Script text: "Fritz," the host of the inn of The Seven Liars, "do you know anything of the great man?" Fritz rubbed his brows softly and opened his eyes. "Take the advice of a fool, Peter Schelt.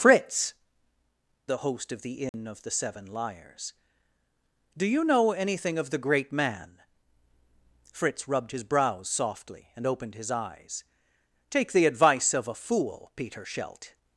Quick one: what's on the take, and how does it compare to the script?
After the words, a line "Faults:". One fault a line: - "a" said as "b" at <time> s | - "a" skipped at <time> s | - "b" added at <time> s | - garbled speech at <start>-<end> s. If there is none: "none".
"Fritz," the host of the inn of The Seven Liars, "do you know anything of the great man?" Fritz rubbed his brows softly and opened his eyes. "Take the advice of a fool, Peter Schelt.
Faults:
none